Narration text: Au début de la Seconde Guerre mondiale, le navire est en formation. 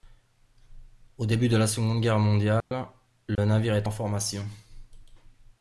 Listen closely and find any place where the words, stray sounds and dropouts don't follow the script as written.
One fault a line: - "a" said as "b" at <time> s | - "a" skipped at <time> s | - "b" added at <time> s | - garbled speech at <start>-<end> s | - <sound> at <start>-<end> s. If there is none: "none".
- dropout at 2.6-2.7 s
- dropout at 3.4-3.4 s